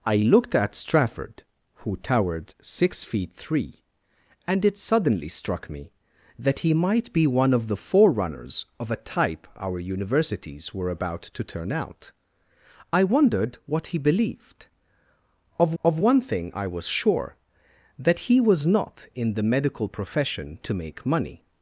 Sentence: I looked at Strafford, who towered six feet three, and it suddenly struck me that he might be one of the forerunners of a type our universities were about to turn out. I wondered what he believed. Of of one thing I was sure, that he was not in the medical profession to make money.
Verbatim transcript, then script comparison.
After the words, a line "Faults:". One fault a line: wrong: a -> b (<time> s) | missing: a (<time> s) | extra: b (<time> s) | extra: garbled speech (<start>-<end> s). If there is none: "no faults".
I looked at Strafford, who towered six feet three, and it suddenly struck me that he might be one of the forerunners of a type our universities were about to turn out. I wondered what he believed. Of of one thing I was sure, that he was not in the medical profession to make money.
Faults:
no faults